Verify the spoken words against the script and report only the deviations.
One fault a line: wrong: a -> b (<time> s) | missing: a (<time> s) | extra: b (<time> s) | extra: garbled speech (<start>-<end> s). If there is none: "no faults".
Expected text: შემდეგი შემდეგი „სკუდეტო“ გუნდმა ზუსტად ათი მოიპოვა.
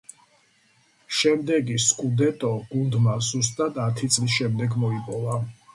missing: შემდეგი (1.8 s)
extra: წლის შემდეგ (4.2 s)